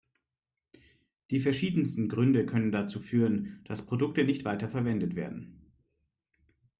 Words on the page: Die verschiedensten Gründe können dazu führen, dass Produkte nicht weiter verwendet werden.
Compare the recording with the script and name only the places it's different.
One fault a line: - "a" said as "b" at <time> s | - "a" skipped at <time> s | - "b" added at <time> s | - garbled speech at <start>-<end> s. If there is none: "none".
none